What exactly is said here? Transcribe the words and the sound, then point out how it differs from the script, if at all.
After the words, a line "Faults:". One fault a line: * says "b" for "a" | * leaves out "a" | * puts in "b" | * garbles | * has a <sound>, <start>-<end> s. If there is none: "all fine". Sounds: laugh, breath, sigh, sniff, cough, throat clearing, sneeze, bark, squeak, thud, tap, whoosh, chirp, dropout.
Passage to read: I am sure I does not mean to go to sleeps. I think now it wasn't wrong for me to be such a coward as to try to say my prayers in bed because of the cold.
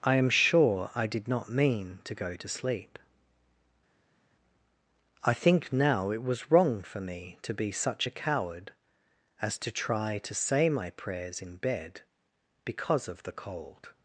I am sure I did not mean to go to sleep. I think now it was wrong for me to be such a coward as to try to say my prayers in bed because of the cold.
Faults:
* says "did" for "does"
* says "sleep" for "sleeps"
* says "was" for "wasn't"